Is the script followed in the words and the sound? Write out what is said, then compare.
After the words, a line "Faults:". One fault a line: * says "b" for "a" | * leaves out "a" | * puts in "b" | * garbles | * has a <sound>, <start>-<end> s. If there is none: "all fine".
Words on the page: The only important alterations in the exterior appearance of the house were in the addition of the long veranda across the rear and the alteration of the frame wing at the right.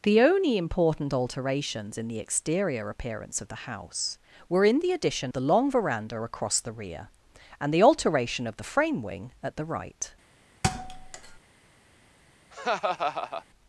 The only important alterations in the exterior appearance of the house were in the addition the long veranda across the rear and the alteration of the frame wing at the right.
Faults:
* leaves out "of"
* has a thud, 10.6-11.4 s
* has a laugh, 12.5-13.4 s